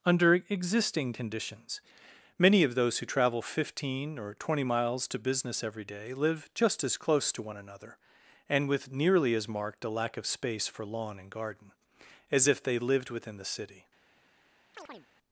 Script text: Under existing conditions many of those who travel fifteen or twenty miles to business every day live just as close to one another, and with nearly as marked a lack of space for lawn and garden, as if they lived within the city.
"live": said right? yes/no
yes